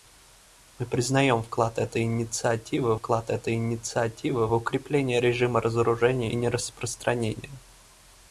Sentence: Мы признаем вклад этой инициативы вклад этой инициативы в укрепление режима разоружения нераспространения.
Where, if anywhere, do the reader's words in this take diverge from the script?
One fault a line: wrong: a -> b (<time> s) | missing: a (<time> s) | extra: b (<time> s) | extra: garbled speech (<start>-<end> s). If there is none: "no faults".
no faults